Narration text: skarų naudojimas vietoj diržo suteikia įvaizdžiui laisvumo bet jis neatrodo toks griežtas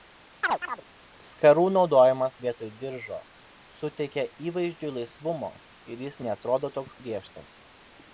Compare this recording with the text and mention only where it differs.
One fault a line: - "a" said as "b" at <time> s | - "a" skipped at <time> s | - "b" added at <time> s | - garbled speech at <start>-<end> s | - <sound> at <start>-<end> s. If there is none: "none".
- chirp at 0.4-0.8 s
- "bet" said as "ir" at 5.9 s